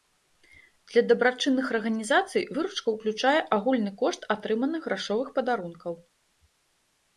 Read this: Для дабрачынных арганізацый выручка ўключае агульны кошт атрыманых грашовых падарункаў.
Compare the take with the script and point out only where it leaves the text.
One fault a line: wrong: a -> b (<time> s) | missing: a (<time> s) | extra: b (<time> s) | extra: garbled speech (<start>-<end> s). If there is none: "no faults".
no faults